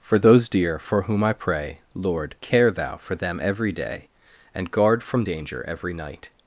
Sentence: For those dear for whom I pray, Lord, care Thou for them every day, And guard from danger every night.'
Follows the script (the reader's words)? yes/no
yes